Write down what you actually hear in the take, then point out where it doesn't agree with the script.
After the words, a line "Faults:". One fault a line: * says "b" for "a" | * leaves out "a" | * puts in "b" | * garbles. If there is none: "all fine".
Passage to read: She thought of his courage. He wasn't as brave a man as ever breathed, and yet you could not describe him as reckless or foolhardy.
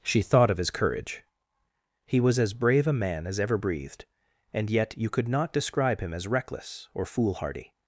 She thought of his courage. He was as brave a man as ever breathed, and yet you could not describe him as reckless or foolhardy.
Faults:
* says "was" for "wasn't"